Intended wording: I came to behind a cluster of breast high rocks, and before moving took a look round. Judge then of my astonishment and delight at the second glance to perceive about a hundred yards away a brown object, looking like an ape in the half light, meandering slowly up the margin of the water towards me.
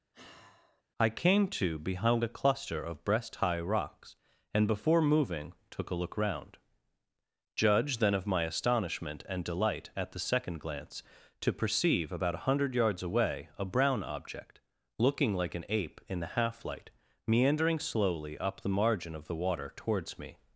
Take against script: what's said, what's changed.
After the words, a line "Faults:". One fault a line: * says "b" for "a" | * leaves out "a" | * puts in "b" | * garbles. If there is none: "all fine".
I came to behind a cluster of breast high rocks, and before moving took a look round. Judge then of my astonishment and delight at the second glance to perceive about a hundred yards away a brown object, looking like an ape in the half light, meandering slowly up the margin of the water towards me.
Faults:
all fine